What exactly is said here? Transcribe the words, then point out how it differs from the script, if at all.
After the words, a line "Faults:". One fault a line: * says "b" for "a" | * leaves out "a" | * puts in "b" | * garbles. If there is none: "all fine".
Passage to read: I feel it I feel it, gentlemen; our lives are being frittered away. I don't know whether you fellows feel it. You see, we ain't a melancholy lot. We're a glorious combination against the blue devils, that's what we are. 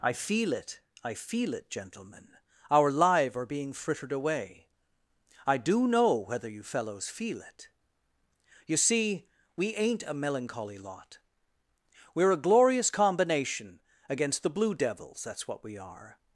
I feel it I feel it, gentlemen; our live are being frittered away. I do know whether you fellows feel it. You see, we ain't a melancholy lot. We're a glorious combination against the blue devils, that's what we are.
Faults:
* says "live" for "lives"
* says "do" for "don't"